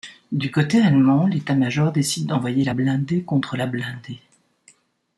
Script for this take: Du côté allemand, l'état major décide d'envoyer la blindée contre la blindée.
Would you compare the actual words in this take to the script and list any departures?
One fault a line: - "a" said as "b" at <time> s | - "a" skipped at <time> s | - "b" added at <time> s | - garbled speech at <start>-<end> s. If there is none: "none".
none